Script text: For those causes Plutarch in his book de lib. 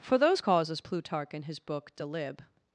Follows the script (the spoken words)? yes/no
yes